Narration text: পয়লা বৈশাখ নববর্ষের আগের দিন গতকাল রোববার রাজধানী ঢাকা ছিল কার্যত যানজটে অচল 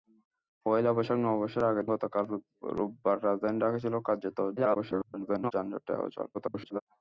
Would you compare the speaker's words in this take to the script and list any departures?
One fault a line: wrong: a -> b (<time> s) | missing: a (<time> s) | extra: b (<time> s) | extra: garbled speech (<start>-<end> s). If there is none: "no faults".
missing: দিন (1.9 s)
extra: garbled speech (4.6-5.5 s)
extra: garbled speech (6.3-6.8 s)